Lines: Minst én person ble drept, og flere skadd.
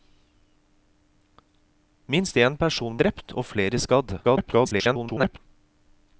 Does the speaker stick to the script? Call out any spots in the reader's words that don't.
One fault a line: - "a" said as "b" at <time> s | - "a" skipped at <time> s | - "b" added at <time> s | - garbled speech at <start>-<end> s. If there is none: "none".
- "ble" skipped at 3.0 s
- garbled speech at 4.2-5.4 s